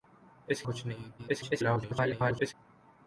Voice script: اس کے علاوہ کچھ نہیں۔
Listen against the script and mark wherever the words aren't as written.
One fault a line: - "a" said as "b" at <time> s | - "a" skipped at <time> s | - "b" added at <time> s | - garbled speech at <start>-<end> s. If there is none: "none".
- "کے علاوہ" skipped at 0.6 s
- garbled speech at 1.2-2.5 s